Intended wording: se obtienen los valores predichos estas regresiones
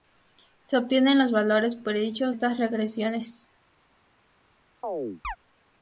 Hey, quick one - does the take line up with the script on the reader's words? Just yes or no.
yes